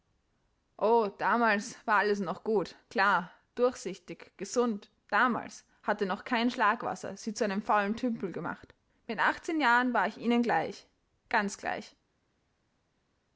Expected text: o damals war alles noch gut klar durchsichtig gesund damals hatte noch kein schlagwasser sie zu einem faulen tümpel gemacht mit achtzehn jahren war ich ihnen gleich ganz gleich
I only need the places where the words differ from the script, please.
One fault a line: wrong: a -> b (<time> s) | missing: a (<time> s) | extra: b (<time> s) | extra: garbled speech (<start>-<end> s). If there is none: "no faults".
no faults